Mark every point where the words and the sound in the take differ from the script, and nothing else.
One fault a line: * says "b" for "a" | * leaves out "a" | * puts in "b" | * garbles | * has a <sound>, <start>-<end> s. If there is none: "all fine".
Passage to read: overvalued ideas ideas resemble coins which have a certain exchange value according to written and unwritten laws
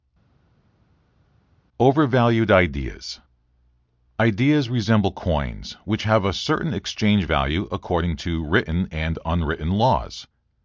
all fine